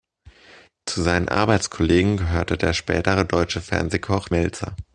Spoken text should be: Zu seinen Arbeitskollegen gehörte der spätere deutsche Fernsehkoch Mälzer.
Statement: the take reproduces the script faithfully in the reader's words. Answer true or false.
true